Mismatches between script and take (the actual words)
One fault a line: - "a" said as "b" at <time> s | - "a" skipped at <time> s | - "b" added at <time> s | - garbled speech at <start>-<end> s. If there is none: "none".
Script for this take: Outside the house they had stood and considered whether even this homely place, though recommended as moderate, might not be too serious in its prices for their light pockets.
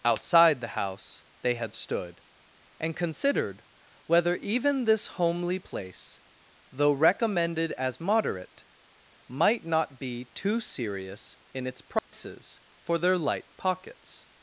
none